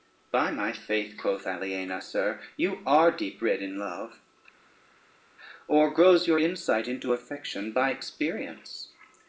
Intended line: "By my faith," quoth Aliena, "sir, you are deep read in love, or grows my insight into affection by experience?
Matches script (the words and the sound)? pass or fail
fail